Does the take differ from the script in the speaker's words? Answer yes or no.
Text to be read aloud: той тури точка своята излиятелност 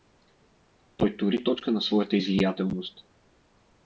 yes